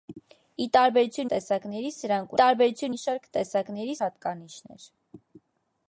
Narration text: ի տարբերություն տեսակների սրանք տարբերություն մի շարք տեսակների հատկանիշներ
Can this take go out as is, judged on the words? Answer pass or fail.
pass